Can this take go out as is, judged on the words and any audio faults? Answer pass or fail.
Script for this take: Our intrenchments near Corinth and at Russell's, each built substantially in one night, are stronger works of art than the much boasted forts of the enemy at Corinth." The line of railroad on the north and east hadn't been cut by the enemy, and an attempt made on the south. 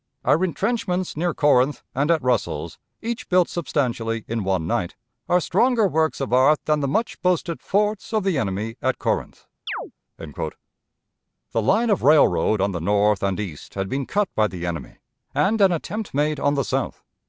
fail